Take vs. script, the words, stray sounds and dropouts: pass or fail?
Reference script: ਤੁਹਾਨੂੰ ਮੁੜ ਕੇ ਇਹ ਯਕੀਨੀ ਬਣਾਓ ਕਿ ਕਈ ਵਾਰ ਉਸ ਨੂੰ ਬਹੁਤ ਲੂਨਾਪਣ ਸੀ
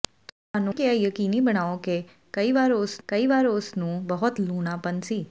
fail